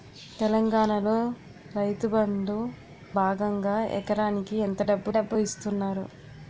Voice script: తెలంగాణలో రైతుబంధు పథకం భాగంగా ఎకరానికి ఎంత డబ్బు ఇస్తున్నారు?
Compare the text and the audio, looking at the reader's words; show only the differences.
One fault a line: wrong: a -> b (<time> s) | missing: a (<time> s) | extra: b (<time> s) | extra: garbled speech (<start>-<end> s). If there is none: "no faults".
missing: పథకం (2.5 s)
extra: డబ్బు (5.1 s)